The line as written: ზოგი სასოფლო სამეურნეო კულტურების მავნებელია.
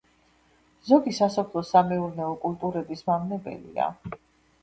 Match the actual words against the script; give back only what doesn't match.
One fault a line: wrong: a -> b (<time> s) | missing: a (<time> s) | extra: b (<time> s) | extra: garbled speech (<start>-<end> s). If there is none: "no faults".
no faults